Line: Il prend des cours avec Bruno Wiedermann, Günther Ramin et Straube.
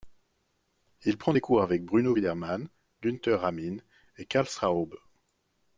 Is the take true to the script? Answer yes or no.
no